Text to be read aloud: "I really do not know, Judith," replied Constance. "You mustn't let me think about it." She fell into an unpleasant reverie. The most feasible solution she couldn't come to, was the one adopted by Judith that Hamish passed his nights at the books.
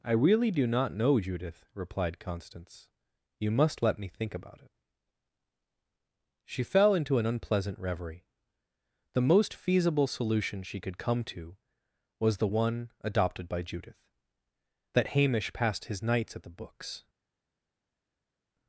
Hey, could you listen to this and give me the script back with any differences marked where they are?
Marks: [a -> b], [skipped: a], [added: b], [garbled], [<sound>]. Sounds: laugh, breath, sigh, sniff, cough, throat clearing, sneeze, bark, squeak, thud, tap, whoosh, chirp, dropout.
"I really do not know, Judith," replied Constance. "You [mustn't -> must] let me think about it." She fell into an unpleasant reverie. The most feasible solution she [couldn't -> could] come to, was the one adopted by Judith that Hamish passed his nights at the books.